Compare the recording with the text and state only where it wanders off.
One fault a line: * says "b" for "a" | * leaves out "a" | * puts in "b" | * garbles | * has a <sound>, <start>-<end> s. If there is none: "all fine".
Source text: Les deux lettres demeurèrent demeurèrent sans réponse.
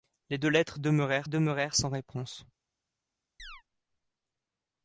* has a chirp, 3.4-3.6 s